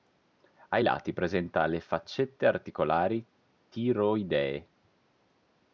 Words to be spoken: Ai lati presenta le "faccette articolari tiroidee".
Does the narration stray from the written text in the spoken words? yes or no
no